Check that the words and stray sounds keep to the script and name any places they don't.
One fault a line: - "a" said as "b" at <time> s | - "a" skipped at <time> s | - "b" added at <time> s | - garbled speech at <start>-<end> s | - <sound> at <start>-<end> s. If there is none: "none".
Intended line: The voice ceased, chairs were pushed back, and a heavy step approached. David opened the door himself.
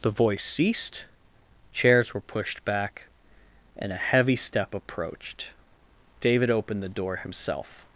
none